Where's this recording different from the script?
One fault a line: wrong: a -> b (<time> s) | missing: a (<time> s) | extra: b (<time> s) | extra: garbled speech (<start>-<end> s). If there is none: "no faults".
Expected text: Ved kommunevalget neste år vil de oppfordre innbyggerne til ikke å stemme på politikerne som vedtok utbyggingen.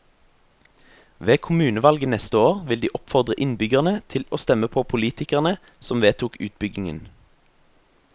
missing: ikke (4.2 s)